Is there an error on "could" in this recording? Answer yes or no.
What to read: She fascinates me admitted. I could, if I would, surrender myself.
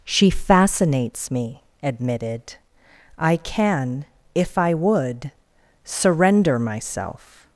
yes